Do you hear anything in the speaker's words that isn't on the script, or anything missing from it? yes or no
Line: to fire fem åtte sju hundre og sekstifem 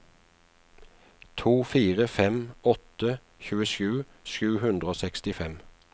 yes